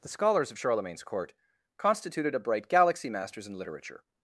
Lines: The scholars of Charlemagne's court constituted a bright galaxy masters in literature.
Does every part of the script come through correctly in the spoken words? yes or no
yes